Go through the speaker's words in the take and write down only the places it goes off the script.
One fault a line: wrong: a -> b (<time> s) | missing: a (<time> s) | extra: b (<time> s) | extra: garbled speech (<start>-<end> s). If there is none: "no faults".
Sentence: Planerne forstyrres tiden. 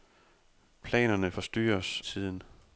no faults